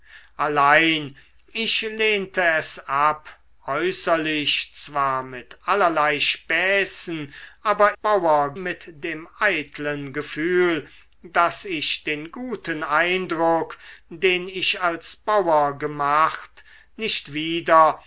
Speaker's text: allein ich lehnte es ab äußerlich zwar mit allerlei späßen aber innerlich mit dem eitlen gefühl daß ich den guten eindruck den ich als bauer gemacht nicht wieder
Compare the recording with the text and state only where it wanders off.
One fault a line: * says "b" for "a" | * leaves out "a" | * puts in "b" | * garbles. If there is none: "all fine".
* says "bauer" for "innerlich"